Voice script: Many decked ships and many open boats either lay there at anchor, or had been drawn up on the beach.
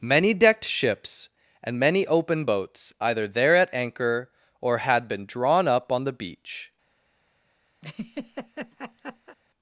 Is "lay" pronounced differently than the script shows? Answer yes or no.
yes